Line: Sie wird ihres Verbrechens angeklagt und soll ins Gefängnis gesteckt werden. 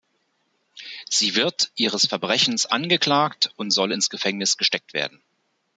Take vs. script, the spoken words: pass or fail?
pass